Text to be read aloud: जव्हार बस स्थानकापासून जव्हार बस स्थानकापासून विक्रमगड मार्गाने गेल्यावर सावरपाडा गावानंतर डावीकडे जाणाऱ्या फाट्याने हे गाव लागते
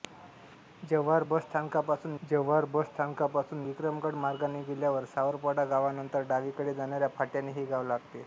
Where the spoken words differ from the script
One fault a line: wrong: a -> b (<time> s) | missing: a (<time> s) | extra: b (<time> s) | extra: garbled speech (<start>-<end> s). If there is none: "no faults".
no faults